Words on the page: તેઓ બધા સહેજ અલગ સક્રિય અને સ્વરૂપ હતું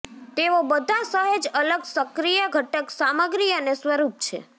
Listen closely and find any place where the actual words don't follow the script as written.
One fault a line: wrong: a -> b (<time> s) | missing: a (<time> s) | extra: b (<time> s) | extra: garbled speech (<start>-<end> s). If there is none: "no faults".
extra: ઘટક સામગ્રી (2.5 s)
wrong: હતું -> છે (4.2 s)